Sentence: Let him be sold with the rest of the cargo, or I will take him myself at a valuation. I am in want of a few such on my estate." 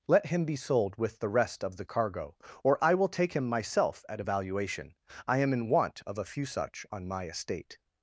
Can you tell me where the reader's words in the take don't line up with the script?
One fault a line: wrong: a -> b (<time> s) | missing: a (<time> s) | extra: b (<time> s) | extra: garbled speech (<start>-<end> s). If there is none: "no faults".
no faults